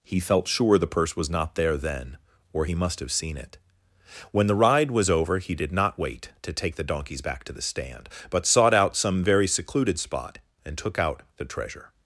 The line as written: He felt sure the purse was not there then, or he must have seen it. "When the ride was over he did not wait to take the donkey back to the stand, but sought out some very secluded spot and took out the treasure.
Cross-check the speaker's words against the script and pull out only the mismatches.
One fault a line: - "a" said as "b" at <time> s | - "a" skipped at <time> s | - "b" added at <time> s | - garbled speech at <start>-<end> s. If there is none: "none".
- "donkey" said as "donkeys" at 6.8 s